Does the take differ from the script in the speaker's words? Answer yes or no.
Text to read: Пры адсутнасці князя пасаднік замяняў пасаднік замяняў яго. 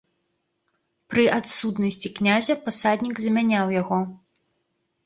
yes